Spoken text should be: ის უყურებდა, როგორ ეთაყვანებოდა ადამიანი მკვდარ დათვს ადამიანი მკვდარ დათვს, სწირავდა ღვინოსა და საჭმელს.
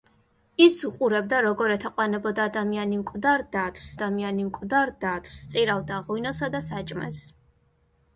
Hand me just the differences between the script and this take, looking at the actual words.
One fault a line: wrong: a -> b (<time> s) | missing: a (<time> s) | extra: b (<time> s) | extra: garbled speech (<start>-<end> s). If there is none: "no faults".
no faults